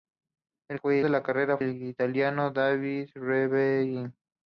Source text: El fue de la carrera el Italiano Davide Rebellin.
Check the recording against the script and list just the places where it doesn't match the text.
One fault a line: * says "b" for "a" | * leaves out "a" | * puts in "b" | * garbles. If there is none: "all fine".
all fine